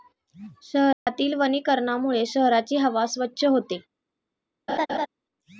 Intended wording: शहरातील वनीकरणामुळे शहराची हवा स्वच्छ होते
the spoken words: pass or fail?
pass